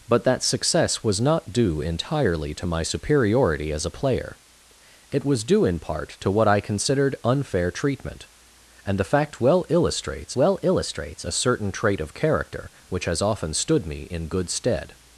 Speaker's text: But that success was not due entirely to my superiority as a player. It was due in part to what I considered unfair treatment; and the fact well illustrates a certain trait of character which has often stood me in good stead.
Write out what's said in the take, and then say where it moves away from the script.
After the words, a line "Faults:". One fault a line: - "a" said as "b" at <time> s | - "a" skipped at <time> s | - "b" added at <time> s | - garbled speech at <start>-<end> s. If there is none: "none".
But that success was not due entirely to my superiority as a player. It was due in part to what I considered unfair treatment; and the fact well illustrates well illustrates a certain trait of character which has often stood me in good stead.
Faults:
- "well illustrates" added at 10.4 s